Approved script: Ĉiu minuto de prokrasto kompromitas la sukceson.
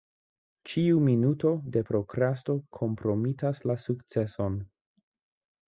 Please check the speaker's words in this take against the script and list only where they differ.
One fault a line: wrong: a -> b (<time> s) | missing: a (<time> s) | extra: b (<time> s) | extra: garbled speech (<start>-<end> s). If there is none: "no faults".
no faults